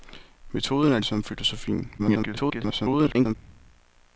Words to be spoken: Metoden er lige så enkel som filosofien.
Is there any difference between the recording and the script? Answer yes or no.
yes